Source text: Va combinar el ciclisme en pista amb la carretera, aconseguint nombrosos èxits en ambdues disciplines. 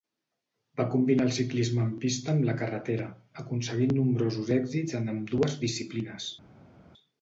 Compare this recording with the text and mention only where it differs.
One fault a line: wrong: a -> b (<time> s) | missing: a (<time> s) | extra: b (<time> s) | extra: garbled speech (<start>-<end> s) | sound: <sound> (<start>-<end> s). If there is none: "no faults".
no faults